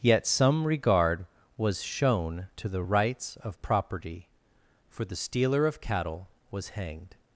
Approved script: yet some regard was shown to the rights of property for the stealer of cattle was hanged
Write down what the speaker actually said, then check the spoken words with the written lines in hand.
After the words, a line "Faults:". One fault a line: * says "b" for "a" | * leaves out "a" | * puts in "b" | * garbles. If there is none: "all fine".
yet some regard was shown to the rights of property for the stealer of cattle was hanged
Faults:
all fine